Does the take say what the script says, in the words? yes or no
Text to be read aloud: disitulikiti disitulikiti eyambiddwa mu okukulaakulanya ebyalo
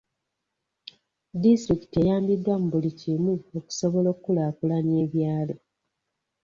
no